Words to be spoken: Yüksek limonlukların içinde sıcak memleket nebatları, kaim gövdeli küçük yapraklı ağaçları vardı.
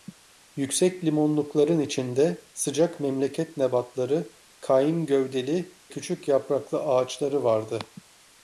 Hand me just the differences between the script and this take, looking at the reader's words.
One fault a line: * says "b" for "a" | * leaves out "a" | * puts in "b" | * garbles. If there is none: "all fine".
all fine